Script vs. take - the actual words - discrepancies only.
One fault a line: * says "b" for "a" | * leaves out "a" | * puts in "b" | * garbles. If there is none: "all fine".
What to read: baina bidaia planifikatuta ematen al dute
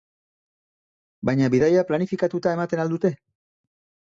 all fine